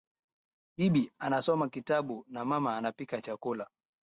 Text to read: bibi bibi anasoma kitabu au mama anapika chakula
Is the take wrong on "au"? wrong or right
wrong